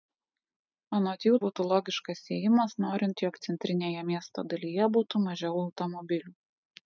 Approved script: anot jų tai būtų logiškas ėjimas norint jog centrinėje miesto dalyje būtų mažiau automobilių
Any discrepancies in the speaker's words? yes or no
yes